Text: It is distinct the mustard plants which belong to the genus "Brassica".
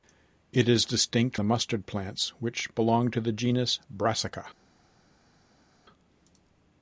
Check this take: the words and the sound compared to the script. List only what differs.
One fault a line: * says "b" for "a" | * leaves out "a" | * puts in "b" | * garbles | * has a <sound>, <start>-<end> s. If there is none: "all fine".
all fine